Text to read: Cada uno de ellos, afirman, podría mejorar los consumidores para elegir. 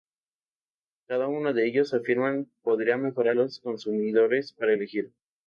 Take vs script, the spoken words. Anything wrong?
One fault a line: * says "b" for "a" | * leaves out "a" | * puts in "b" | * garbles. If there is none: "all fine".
all fine